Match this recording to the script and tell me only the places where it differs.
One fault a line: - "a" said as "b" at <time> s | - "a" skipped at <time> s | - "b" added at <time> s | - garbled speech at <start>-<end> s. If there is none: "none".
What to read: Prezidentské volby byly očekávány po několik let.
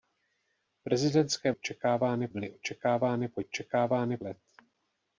- "volby" said as "očekávány" at 1.5 s
- "několik" said as "očekávány" at 3.4 s